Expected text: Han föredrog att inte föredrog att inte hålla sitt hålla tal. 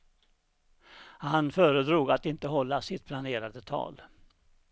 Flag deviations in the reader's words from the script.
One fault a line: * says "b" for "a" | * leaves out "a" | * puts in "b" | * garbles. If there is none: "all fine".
* leaves out "föredrog att inte"
* says "planerade" for "hålla"